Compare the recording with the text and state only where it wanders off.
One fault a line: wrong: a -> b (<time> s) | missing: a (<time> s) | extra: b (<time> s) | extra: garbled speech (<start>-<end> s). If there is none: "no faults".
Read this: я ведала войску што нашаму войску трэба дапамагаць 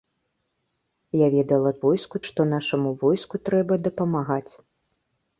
no faults